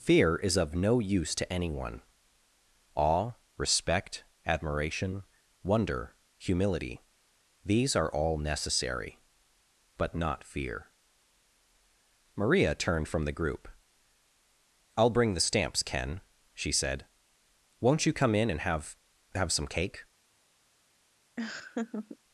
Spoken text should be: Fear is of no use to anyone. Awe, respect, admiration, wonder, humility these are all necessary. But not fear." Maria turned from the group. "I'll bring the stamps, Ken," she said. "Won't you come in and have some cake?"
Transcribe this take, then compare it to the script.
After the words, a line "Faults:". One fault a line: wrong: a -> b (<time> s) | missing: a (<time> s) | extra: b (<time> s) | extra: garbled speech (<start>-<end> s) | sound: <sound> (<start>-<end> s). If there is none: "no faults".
Fear is of no use to anyone. Awe, respect, admiration, wonder, humility these are all necessary. But not fear." Maria turned from the group. "I'll bring the stamps, Ken," she said. "Won't you come in and have have some cake?"
Faults:
extra: have (19.3 s)
sound: laugh (21.4-22.2 s)